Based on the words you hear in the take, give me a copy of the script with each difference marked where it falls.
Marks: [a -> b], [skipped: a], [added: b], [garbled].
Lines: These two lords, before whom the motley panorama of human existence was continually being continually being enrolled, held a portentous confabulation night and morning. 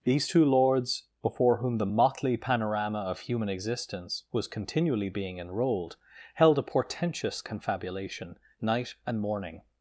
These two lords, before whom the motley panorama of human existence was continually being [skipped: continually being] enrolled, held a portentous confabulation night and morning.